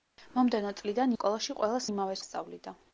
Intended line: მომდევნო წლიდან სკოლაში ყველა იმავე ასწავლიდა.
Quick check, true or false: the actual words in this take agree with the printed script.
true